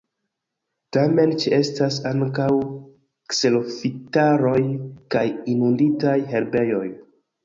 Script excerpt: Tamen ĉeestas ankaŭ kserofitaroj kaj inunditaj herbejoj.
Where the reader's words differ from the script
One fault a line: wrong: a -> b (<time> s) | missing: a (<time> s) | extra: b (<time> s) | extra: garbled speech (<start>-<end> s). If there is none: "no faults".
no faults